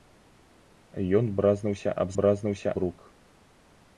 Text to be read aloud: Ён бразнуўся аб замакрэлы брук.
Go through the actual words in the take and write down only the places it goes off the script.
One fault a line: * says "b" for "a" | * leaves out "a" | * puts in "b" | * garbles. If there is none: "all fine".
* says "бразнуўся" for "замакрэлы"